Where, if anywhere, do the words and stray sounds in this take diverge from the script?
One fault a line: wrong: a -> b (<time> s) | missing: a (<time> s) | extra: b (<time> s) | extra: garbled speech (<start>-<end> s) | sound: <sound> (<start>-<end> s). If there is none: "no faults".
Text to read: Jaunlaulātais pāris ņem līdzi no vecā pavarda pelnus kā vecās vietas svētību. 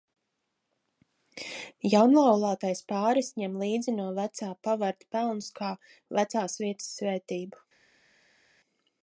no faults